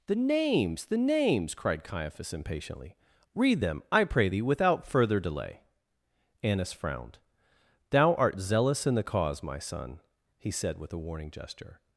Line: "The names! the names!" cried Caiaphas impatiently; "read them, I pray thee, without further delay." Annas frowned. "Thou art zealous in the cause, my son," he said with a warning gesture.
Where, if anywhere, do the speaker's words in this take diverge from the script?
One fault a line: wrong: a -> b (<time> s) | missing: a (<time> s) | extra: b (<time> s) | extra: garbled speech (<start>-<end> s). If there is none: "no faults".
no faults